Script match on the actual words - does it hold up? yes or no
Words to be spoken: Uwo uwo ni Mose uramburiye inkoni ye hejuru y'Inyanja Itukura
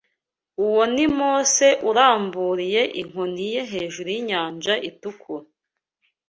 no